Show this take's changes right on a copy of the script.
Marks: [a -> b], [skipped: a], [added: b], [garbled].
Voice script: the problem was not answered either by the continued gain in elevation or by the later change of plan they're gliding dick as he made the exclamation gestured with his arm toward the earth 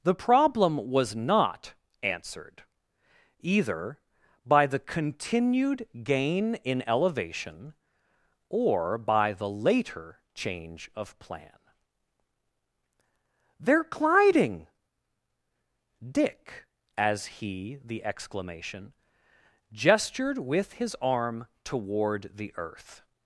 the problem was not answered either by the continued gain in elevation or by the later change of plan they're gliding dick as he [skipped: made] the exclamation gestured with his arm toward the earth